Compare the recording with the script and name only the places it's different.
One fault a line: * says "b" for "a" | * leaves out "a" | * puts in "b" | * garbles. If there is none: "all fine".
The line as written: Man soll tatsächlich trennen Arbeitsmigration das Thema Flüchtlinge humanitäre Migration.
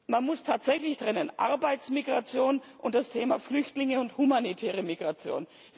* says "muss" for "soll"
* puts in "und"
* puts in "und"